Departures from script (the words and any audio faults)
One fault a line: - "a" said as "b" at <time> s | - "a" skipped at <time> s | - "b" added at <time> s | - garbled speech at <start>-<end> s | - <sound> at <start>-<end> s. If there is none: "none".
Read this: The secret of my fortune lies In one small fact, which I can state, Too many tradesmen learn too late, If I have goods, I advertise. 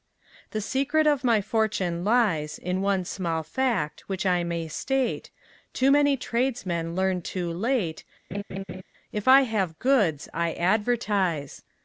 - "can" said as "may" at 4.4 s
- laugh at 8.3-8.8 s